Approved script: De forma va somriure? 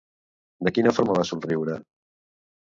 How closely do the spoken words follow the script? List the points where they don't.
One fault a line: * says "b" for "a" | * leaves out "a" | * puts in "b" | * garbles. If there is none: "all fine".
* puts in "quina"